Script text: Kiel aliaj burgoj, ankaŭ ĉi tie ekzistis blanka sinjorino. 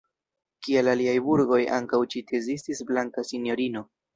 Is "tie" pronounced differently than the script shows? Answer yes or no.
yes